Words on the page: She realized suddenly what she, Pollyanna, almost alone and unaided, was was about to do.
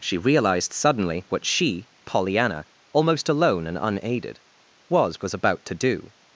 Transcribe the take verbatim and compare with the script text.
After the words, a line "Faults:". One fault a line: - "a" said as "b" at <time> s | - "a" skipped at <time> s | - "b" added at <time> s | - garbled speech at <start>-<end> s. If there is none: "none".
She realized suddenly what she, Pollyanna, almost alone and unaided, was was about to do.
Faults:
none